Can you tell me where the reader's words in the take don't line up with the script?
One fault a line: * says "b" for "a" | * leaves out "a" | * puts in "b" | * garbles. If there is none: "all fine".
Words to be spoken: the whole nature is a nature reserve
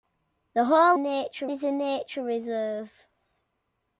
all fine